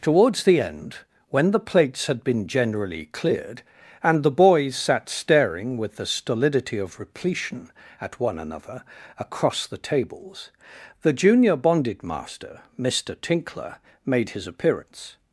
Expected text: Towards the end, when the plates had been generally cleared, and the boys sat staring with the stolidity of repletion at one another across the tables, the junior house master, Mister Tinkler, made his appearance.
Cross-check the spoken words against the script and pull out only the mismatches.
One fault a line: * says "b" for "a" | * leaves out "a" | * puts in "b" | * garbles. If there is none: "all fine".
* says "bonded" for "house"